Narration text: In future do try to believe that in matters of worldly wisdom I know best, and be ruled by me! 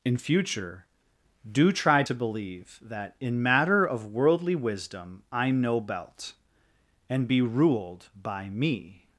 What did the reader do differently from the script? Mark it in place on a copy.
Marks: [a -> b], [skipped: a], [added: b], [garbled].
In future do try to believe that in [matters -> matter] of worldly wisdom I know [best, -> belt] and be ruled by me!